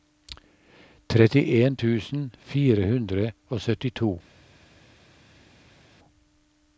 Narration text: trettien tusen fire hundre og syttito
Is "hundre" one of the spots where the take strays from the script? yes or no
no